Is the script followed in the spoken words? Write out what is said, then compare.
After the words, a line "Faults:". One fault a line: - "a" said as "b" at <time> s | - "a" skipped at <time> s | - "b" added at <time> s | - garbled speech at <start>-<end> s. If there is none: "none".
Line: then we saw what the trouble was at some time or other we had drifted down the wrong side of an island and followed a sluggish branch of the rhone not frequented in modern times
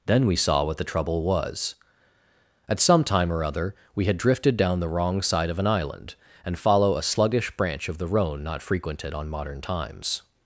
then we saw what the trouble was at some time or other we had drifted down the wrong side of an island and follow a sluggish branch of the rhone not frequented on modern times
Faults:
- "followed" said as "follow" at 6.6 s
- "in" said as "on" at 9.1 s